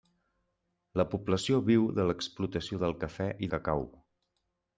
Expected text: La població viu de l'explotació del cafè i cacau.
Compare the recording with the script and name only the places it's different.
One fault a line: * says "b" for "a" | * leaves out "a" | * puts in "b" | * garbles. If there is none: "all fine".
all fine